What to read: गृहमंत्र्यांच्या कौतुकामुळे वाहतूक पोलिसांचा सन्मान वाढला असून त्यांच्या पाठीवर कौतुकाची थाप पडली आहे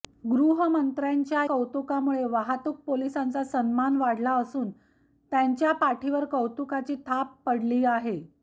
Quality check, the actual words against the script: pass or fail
pass